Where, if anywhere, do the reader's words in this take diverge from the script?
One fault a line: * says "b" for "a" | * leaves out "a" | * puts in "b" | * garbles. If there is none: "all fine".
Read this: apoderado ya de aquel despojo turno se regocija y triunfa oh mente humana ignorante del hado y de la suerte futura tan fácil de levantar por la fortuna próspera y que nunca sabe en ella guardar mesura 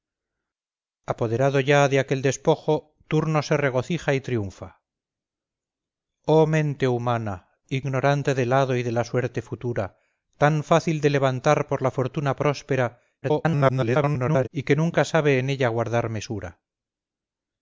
* garbles